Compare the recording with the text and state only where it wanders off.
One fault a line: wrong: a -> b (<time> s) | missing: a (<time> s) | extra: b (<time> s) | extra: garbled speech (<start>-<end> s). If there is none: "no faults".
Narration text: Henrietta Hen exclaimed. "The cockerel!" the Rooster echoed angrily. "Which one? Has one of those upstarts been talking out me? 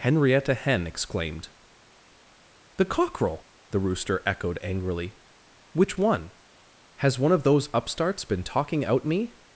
no faults